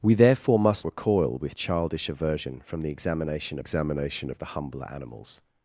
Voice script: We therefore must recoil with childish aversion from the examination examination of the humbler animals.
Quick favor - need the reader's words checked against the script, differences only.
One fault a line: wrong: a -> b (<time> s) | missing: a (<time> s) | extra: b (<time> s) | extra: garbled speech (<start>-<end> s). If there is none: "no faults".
no faults